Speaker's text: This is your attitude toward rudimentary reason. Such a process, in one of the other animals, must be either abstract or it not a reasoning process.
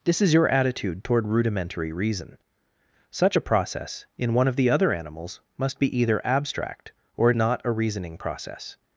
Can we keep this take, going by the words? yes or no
yes